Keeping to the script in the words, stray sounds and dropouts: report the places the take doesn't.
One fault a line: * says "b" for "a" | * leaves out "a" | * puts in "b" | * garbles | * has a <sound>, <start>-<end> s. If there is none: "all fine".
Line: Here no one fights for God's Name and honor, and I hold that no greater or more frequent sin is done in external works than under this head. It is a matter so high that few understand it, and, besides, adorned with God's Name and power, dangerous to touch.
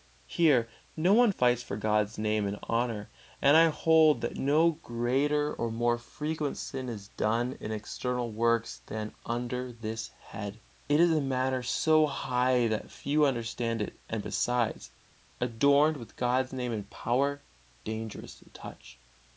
all fine